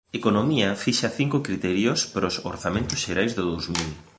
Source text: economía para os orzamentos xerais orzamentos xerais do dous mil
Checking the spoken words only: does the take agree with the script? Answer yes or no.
no